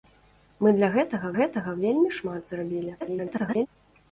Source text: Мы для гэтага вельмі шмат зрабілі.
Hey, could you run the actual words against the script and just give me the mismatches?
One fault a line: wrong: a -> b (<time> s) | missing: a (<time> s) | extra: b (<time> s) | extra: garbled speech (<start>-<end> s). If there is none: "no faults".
extra: гэтага (1.4 s)
extra: garbled speech (3.0-3.7 s)